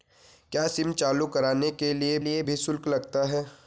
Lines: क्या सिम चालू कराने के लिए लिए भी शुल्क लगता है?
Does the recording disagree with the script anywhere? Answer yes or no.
no